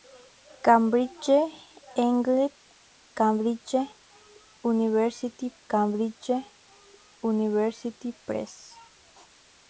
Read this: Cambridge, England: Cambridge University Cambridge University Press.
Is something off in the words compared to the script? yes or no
no